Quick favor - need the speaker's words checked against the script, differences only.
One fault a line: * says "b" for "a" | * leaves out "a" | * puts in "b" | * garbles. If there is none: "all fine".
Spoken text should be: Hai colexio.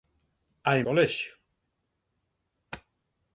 all fine